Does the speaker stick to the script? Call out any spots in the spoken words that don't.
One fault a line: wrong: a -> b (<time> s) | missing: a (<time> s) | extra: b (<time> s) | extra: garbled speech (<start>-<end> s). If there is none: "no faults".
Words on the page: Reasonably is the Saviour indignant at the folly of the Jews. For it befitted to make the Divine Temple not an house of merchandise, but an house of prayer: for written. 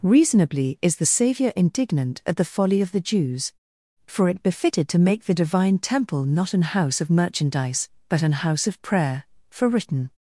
no faults